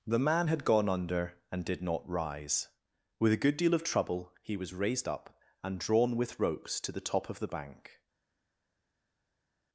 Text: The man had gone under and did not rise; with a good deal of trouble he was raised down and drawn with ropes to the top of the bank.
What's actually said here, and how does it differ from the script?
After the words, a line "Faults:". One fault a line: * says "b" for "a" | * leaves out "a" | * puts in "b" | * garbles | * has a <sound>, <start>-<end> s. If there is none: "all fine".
The man had gone under and did not rise; with a good deal of trouble he was raised up and drawn with ropes to the top of the bank.
Faults:
* says "up" for "down"